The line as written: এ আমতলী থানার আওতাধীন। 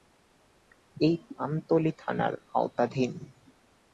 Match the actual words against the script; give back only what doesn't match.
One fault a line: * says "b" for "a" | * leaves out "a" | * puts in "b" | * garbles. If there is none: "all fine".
all fine